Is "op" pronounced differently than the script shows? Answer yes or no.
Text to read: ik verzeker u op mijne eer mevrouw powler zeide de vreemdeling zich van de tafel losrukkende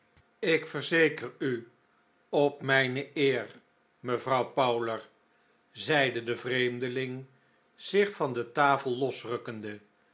no